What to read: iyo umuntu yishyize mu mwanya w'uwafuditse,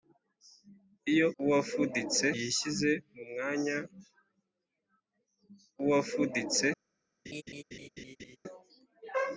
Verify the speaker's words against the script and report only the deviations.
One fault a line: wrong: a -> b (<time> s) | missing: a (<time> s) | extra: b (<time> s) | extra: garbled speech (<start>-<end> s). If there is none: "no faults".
wrong: umuntu -> w'uwafuditse (1.4 s)